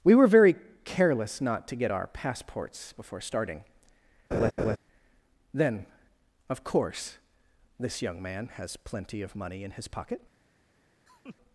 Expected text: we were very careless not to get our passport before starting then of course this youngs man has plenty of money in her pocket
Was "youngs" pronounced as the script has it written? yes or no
no